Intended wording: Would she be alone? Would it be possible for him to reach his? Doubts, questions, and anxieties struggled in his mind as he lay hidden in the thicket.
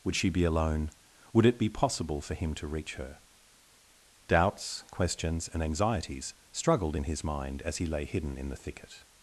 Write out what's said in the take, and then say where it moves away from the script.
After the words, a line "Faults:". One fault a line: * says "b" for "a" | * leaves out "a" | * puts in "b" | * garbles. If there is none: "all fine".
Would she be alone? Would it be possible for him to reach her? Doubts, questions, and anxieties struggled in his mind as he lay hidden in the thicket.
Faults:
* says "her" for "his"